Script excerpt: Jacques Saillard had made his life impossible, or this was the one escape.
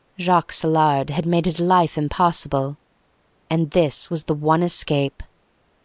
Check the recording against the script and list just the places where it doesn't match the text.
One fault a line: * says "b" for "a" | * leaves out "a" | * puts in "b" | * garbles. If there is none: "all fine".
* says "and" for "or"